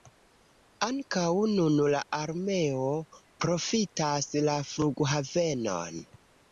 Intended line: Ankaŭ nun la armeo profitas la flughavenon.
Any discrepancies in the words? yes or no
no